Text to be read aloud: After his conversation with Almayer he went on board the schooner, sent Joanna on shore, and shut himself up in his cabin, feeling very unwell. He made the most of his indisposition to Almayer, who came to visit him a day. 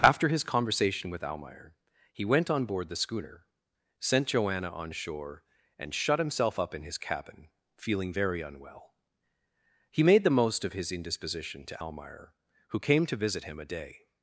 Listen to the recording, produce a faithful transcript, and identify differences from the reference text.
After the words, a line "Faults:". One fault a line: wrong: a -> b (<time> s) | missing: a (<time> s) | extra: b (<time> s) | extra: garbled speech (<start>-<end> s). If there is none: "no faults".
After his conversation with Almayer he went on board the schooner, sent Joanna on shore, and shut himself up in his cabin, feeling very unwell. He made the most of his indisposition to Almayer, who came to visit him a day.
Faults:
no faults